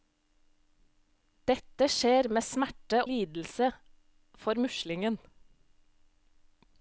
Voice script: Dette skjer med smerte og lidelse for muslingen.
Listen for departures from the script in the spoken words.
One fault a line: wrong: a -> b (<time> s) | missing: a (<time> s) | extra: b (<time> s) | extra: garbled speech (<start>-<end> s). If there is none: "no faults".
missing: og (3.0 s)